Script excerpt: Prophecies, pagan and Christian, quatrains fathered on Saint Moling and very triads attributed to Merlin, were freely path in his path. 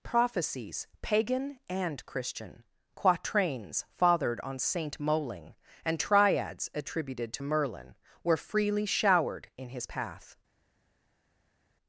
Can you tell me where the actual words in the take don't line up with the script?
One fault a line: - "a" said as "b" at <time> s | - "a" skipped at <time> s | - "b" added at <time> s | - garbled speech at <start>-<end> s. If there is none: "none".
- "very" skipped at 6.0 s
- "path" said as "showered" at 8.9 s